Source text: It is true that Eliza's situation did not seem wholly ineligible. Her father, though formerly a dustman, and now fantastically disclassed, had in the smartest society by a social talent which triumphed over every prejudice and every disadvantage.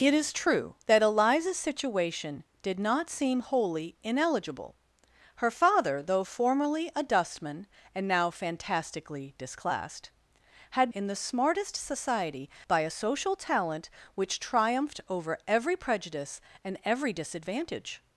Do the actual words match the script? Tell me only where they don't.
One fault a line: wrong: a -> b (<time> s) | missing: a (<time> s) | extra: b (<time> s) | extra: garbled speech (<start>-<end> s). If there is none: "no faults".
no faults